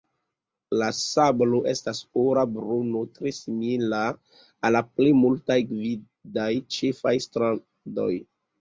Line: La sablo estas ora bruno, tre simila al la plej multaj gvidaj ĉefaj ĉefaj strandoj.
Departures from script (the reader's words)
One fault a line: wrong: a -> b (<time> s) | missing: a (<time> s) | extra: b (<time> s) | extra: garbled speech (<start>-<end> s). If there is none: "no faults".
missing: ĉefaj (7.2 s)